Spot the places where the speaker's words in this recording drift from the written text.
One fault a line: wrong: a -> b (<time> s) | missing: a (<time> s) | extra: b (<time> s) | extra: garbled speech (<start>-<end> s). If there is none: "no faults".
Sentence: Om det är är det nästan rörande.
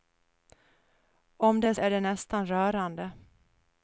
no faults